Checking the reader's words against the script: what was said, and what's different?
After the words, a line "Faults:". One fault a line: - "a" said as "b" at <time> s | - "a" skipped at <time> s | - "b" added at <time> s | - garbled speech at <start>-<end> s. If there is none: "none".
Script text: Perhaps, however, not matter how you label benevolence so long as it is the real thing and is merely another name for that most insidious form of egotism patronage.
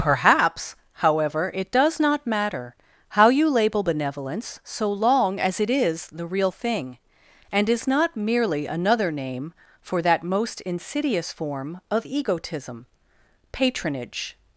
Perhaps, however, it does not matter how you label benevolence so long as it is the real thing and is not merely another name for that most insidious form of egotism patronage.
Faults:
- "it does" added at 1.5 s
- "not" added at 7.9 s